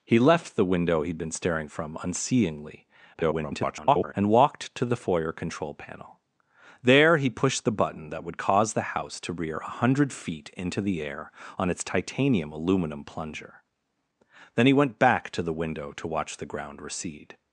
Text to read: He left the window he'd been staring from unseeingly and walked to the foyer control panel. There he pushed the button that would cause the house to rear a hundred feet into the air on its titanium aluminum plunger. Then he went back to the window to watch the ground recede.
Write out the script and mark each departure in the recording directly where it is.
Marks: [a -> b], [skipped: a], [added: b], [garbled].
He left the window he'd been staring from unseeingly [garbled] and walked to the foyer control panel. There he pushed the button that would cause the house to rear a hundred feet into the air on its titanium aluminum plunger. Then he went back to the window to watch the ground recede.